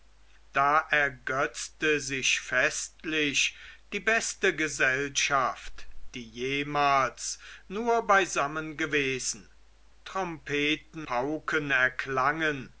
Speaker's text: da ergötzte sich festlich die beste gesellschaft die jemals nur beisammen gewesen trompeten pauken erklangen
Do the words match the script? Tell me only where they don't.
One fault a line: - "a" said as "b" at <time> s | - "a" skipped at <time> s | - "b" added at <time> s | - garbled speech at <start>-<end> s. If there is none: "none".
none